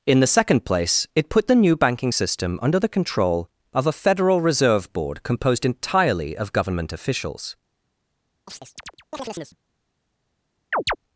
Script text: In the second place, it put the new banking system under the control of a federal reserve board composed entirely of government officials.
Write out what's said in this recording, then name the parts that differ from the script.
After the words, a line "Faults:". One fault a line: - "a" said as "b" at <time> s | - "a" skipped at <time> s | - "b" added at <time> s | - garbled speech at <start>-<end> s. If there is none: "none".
In the second place, it put the new banking system under the control of a federal reserve board composed entirely of government officials.
Faults:
none